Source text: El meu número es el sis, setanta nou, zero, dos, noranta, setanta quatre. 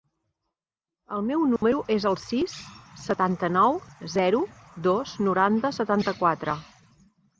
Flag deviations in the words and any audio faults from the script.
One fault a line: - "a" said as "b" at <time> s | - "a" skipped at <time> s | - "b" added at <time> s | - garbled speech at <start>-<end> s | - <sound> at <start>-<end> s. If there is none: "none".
- dropout at 1.6-1.6 s